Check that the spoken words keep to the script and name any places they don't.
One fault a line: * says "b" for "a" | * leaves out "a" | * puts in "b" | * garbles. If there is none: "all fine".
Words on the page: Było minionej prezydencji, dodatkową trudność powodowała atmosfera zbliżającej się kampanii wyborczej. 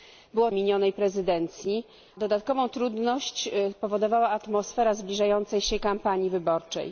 all fine